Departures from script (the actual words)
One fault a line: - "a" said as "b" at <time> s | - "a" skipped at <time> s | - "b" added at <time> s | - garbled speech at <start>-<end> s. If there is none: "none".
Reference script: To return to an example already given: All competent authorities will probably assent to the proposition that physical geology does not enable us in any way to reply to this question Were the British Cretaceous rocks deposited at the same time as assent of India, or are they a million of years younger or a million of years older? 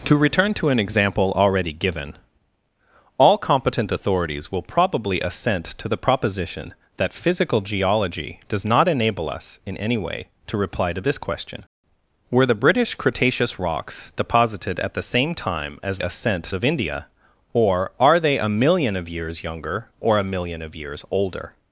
none